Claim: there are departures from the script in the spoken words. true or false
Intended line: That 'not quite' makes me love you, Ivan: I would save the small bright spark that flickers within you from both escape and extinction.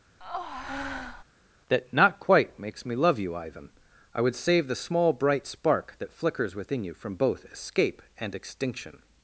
false